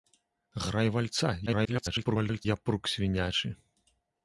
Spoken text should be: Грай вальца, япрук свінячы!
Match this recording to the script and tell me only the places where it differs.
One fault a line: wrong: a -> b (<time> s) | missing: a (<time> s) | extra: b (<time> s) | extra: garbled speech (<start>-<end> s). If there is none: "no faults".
extra: garbled speech (1.5-2.5 s)